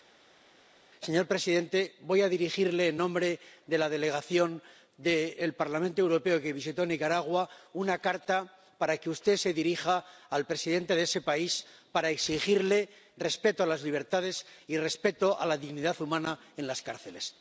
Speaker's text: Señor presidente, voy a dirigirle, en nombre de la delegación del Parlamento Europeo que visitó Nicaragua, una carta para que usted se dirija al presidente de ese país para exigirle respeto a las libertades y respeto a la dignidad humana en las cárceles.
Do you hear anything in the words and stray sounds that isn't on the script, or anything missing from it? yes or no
no